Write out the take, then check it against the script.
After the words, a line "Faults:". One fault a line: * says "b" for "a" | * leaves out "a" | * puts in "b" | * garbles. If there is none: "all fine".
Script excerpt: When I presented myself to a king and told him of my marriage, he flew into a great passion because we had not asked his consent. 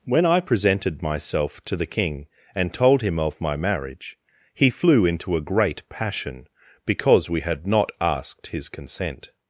When I presented myself to the king and told him of my marriage, he flew into a great passion because we had not asked his consent.
Faults:
* says "the" for "a"